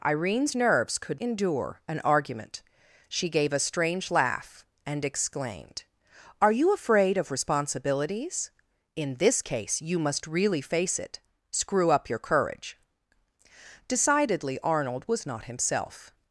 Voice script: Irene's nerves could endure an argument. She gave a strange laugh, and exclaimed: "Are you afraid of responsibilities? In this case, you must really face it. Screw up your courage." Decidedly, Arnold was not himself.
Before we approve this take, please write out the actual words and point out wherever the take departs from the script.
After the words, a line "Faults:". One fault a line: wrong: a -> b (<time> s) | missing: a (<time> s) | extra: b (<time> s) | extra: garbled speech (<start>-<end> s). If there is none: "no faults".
Irene's nerves could endure an argument. She gave a strange laugh, and exclaimed: "Are you afraid of responsibilities? In this case, you must really face it. Screw up your courage." Decidedly, Arnold was not himself.
Faults:
no faults